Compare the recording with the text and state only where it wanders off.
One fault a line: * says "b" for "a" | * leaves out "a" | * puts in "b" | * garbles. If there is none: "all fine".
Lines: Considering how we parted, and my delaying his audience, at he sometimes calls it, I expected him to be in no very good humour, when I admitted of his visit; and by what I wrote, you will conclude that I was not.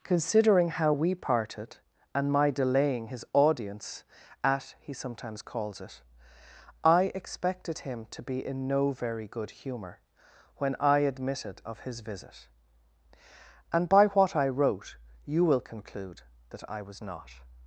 all fine